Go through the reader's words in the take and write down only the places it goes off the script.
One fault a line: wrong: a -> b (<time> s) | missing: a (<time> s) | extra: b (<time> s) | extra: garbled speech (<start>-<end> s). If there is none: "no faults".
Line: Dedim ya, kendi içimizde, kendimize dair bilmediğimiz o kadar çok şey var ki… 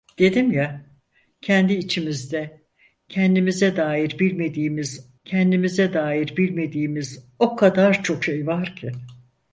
extra: kendimize dair bilmediğimiz (5.3 s)